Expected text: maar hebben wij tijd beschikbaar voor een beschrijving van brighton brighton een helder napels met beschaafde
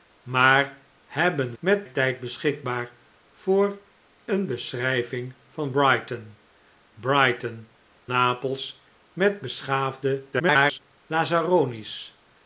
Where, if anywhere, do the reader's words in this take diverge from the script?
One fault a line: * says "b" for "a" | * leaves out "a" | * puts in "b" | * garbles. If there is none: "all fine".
* says "met" for "wij"
* leaves out "een helder"
* garbles